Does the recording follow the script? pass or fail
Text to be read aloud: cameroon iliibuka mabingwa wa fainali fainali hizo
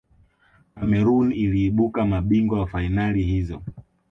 fail